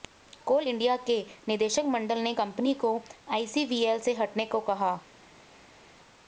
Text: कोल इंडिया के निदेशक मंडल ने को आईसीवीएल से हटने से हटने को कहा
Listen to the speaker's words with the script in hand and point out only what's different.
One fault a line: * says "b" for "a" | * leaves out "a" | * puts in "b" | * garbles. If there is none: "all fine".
* puts in "कंपनी"
* leaves out "से हटने"